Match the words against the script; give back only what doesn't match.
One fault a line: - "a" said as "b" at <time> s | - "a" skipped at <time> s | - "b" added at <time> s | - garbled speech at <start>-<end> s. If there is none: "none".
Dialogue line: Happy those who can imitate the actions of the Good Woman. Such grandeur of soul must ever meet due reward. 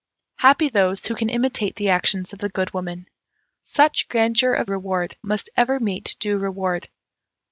- "soul" said as "reward" at 4.7 s